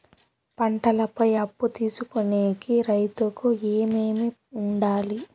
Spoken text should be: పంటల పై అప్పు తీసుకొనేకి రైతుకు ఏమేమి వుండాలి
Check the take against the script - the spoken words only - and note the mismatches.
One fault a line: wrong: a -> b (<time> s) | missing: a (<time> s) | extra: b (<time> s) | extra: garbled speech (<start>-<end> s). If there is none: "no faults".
no faults